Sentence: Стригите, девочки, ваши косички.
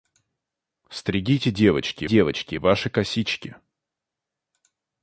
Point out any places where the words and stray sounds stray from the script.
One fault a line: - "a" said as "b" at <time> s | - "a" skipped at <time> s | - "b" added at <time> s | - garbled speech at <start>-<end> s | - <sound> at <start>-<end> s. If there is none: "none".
- "девочки" added at 2.0 s